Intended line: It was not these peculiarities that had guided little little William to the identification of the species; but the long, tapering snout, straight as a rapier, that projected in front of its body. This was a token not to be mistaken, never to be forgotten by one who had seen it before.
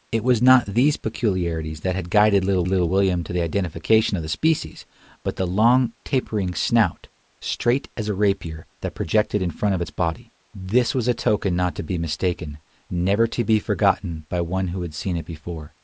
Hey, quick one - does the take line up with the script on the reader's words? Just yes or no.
yes